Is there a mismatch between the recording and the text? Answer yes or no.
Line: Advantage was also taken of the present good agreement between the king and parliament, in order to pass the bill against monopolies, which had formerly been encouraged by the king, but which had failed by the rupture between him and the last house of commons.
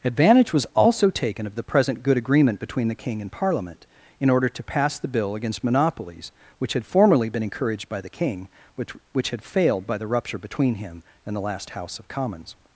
yes